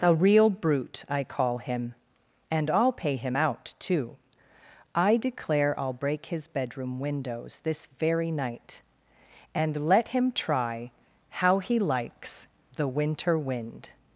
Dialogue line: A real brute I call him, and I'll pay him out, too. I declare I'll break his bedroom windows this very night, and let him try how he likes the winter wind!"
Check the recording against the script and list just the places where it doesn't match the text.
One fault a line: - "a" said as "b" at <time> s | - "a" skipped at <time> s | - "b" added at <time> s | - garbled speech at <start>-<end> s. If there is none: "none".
none